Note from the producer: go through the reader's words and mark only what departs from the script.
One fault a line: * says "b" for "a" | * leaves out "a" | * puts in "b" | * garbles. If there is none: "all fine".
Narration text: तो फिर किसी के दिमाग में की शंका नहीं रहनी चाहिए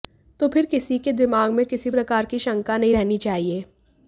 * puts in "किसी प्रकार"